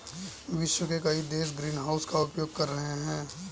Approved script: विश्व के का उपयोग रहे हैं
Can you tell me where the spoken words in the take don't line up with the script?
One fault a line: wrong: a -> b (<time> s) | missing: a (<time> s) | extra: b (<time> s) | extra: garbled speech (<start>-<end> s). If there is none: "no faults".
extra: कई देश ग्रीनहाउस (1.0 s)
extra: कर (2.6 s)